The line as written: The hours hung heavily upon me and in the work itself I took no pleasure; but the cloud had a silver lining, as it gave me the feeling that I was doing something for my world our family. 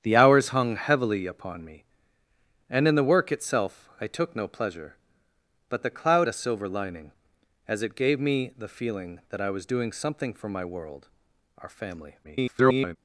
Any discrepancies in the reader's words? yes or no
yes